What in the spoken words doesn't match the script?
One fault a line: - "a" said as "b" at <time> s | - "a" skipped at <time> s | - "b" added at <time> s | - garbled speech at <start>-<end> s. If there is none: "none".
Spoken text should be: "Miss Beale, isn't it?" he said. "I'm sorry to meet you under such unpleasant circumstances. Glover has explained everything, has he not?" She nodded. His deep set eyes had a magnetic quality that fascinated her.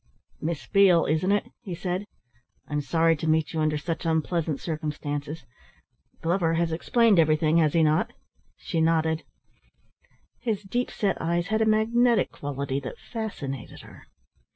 none